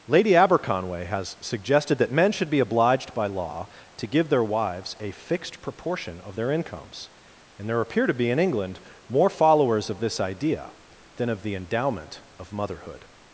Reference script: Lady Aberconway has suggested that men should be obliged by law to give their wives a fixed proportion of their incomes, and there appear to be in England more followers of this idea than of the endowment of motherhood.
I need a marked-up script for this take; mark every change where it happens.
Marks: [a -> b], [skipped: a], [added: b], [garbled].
Lady Aberconway has suggested that men should be obliged by law to give their wives a fixed proportion of their incomes, and there appear to be in England more followers of this idea than of the endowment of motherhood.